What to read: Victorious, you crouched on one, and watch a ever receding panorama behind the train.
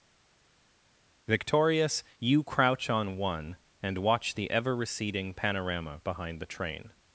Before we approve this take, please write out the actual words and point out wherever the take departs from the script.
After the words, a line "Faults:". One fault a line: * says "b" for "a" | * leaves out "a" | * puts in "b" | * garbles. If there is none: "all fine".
Victorious, you crouch on one, and watch the ever receding panorama behind the train.
Faults:
* says "crouch" for "crouched"
* says "the" for "a"